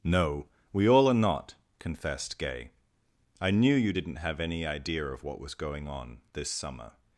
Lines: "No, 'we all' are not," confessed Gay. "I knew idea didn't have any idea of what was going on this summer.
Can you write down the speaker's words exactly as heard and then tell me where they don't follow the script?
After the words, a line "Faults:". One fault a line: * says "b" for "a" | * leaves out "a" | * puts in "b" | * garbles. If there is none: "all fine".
"No, 'we all' are not," confessed Gay. "I knew you didn't have any idea of what was going on this summer.
Faults:
* says "you" for "idea"